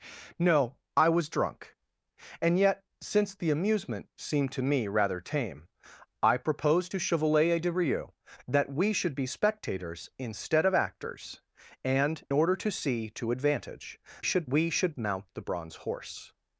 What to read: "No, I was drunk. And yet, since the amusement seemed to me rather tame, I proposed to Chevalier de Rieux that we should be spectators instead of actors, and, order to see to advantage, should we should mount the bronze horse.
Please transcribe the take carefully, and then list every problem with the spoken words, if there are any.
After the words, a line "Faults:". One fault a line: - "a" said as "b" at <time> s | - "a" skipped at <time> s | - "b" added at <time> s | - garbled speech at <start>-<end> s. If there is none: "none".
"No, I was drunk. And yet, since the amusement seemed to me rather tame, I proposed to Chevalier de Rieux that we should be spectators instead of actors, and, order to see to advantage, should we should mount the bronze horse.
Faults:
none